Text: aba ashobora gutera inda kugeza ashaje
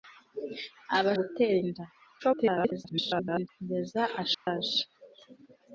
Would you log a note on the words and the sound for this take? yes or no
yes